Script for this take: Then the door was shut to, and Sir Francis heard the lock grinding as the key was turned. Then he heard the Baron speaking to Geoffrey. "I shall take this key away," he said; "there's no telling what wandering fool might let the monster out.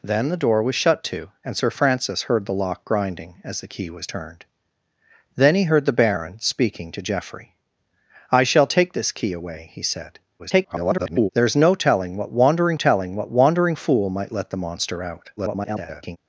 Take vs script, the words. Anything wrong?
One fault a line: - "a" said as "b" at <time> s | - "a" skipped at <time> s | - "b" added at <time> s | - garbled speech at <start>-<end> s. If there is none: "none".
- garbled speech at 10.4-11.3 s
- "telling what wandering" added at 12.7 s
- garbled speech at 15.4-16.2 s